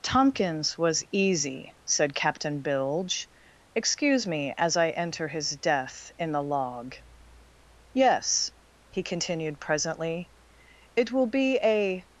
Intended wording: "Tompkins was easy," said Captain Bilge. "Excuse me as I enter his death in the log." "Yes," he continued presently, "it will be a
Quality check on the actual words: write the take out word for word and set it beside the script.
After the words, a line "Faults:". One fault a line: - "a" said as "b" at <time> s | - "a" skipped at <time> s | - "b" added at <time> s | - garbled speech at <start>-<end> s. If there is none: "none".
"Tompkins was easy," said Captain Bilge. "Excuse me as I enter his death in the log." "Yes," he continued presently, "it will be a
Faults:
none